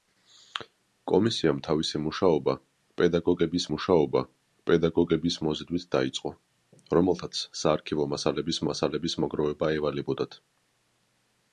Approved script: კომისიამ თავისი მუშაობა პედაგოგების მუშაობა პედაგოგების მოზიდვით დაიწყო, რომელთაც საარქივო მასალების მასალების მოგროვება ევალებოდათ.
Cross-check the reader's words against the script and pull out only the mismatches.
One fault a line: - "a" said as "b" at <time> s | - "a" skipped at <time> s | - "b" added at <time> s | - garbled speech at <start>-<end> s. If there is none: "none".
none